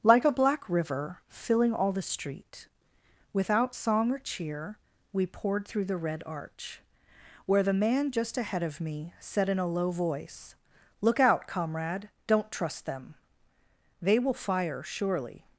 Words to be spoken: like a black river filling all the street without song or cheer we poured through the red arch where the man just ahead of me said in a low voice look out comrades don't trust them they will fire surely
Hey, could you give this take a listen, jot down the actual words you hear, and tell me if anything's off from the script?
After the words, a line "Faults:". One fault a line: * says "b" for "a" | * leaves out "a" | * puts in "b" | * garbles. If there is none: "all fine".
like a black river filling all the street without song or cheer we poured through the red arch where the man just ahead of me said in a low voice look out comrade don't trust them they will fire surely
Faults:
* says "comrade" for "comrades"